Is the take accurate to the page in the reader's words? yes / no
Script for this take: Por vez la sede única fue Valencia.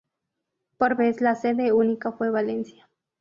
yes